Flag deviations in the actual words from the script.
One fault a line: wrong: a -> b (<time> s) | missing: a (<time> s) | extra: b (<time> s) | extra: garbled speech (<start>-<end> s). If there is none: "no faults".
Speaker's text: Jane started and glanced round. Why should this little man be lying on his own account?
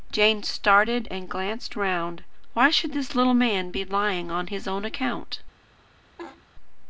no faults